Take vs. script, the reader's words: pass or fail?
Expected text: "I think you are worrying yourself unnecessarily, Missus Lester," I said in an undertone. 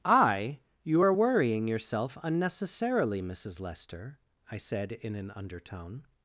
fail